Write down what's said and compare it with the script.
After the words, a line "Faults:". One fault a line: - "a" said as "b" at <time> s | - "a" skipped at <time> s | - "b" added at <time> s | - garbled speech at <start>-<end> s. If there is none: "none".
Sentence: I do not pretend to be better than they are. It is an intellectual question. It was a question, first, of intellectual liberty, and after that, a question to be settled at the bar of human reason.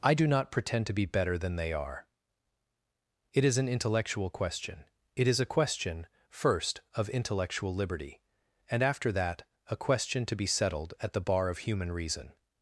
I do not pretend to be better than they are. It is an intellectual question. It is a question, first, of intellectual liberty, and after that, a question to be settled at the bar of human reason.
Faults:
- "was" said as "is" at 5.3 s